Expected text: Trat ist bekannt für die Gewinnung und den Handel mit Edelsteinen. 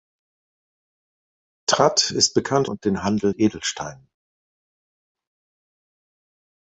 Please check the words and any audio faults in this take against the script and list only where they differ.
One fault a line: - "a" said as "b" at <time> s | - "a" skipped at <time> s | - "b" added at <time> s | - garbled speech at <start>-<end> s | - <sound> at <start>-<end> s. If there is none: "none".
- "für die Gewinnung" skipped at 2.7 s
- "mit" skipped at 3.3 s